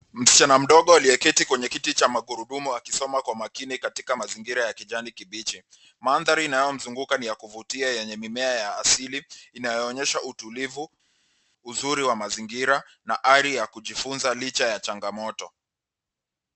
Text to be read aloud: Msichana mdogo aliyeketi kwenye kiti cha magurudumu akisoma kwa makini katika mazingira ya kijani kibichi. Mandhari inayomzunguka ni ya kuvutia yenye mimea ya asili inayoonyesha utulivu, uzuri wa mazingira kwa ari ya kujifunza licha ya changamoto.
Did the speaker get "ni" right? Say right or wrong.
right